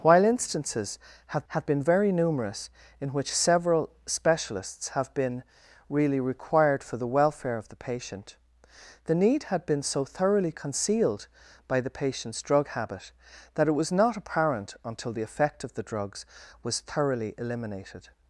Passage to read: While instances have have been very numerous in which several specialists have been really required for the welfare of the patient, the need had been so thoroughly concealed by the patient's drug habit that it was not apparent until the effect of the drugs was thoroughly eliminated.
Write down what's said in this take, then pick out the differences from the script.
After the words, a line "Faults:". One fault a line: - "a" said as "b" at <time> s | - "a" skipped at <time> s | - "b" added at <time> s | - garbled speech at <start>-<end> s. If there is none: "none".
While instances have have been very numerous in which several specialists have been really required for the welfare of the patient, the need had been so thoroughly concealed by the patient's drug habit that it was not apparent until the effect of the drugs was thoroughly eliminated.
Faults:
none